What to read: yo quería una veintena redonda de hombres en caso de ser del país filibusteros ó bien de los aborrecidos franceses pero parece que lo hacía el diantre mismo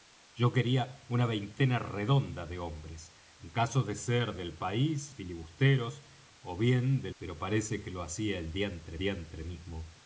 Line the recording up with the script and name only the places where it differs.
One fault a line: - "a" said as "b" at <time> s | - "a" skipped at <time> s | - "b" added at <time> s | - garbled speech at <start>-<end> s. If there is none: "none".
- "los aborrecidos franceses" skipped at 7.1 s
- "diantre" added at 9.0 s